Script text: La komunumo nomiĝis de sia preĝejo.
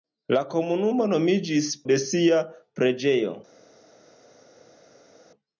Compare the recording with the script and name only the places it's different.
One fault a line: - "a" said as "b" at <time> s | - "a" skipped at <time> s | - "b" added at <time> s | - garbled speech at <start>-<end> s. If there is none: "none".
none